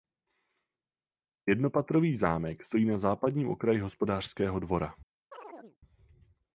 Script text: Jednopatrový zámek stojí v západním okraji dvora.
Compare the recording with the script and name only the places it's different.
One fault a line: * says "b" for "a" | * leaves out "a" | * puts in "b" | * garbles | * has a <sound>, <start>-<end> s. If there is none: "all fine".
* says "na" for "v"
* puts in "hospodářského"
* has a chirp, 5.3-5.8 s